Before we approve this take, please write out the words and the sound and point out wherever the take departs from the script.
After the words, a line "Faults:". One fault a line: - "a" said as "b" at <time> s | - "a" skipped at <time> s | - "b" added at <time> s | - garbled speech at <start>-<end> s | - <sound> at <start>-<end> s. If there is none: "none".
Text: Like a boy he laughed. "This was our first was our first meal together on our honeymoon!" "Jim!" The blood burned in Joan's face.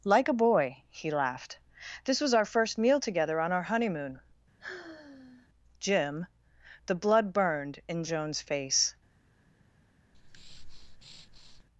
Like a boy he laughed. "This was our first meal together on our honeymoon!" "Jim!" The blood burned in Joan's face.
Faults:
- "was our first" skipped at 2.8 s
- sigh at 4.6-5.5 s
- breath at 10.1-11.6 s